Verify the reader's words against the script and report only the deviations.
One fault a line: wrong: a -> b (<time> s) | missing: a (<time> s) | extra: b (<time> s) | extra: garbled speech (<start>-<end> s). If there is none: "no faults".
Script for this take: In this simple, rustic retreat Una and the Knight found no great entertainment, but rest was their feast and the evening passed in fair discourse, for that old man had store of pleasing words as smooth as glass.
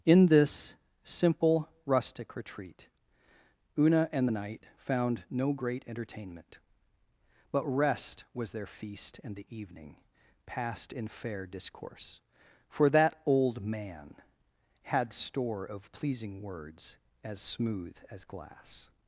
no faults